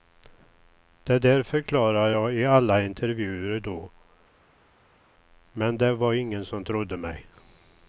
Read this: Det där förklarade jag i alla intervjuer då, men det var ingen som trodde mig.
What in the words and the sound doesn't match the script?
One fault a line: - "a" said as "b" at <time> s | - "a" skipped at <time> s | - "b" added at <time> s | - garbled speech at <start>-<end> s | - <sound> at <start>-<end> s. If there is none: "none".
none